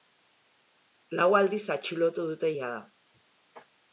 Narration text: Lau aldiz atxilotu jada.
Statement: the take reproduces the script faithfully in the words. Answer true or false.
false